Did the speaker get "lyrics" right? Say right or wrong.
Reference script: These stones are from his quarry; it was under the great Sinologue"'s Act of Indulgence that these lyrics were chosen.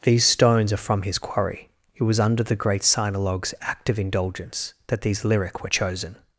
wrong